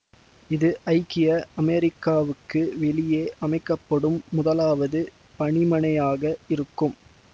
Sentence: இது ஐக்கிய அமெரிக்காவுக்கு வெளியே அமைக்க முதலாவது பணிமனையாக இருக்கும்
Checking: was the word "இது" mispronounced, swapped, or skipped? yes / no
no